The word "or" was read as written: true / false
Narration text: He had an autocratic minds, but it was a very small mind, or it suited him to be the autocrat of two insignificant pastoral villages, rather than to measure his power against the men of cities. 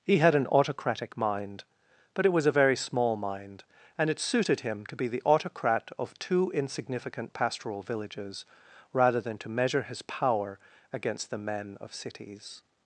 false